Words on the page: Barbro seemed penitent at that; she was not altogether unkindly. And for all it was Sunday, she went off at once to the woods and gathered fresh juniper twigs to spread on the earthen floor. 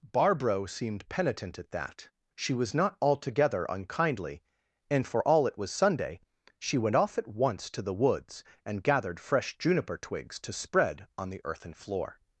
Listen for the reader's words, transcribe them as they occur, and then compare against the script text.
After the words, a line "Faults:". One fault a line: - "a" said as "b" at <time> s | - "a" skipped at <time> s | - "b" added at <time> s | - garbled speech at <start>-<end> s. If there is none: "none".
Barbro seemed penitent at that; she was not altogether unkindly. And for all it was Sunday, she went off at once to the woods and gathered fresh juniper twigs to spread on the earthen floor.
Faults:
none